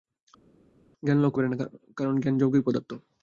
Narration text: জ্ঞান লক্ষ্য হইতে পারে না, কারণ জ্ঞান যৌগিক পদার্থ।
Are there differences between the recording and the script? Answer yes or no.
yes